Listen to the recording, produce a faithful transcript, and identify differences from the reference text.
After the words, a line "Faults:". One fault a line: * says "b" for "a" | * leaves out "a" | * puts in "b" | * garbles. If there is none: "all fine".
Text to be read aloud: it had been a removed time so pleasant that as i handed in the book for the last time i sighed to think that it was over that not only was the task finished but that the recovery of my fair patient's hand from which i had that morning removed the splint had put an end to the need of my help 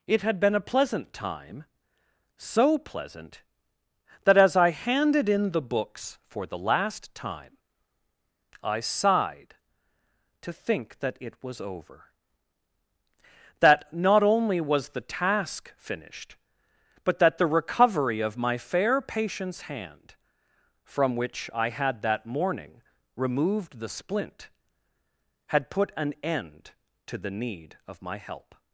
it had been a pleasant time so pleasant that as i handed in the books for the last time i sighed to think that it was over that not only was the task finished but that the recovery of my fair patient's hand from which i had that morning removed the splint had put an end to the need of my help
Faults:
* says "pleasant" for "removed"
* says "books" for "book"